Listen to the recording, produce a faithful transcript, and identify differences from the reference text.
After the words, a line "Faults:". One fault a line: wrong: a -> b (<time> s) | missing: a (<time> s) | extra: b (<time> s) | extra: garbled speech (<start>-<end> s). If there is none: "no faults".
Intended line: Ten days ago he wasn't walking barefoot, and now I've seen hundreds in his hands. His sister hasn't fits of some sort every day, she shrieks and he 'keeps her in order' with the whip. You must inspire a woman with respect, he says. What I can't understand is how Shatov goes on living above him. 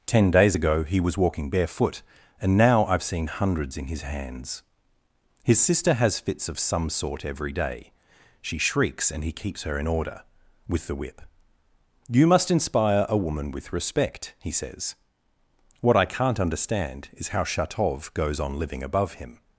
Ten days ago he was walking barefoot, and now I've seen hundreds in his hands. His sister has fits of some sort every day, she shrieks and he 'keeps her in order' with the whip. You must inspire a woman with respect, he says. What I can't understand is how Shatov goes on living above him.
Faults:
wrong: wasn't -> was (1.0 s)
wrong: hasn't -> has (5.9 s)